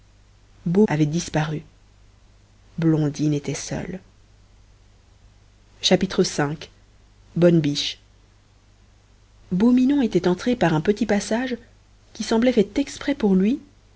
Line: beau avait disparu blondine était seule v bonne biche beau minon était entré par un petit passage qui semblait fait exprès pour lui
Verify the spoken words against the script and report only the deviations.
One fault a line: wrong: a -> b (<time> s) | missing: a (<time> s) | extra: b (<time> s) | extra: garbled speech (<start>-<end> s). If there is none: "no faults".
no faults